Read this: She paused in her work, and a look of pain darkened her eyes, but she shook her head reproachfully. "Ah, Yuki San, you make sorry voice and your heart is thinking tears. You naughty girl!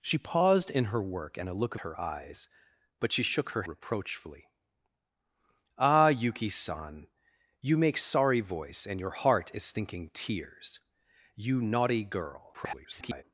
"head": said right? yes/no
no